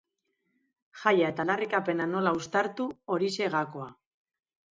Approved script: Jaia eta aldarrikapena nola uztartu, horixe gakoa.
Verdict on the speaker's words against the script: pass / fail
pass